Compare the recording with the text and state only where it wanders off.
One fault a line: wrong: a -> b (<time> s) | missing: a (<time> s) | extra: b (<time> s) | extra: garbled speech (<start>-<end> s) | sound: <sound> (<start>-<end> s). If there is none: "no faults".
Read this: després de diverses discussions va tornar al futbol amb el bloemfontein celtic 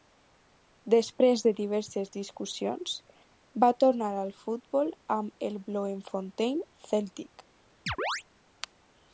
sound: chirp (7.9-8.2 s)